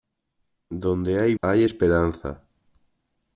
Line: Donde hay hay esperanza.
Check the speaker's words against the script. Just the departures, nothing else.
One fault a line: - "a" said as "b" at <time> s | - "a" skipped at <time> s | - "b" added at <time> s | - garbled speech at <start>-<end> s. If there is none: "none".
none